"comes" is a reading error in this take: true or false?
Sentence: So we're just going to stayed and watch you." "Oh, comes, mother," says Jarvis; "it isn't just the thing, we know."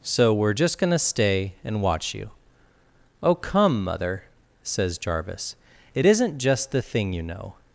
true